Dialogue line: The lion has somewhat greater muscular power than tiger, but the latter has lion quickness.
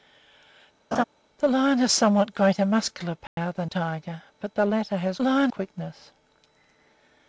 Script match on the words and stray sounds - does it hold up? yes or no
no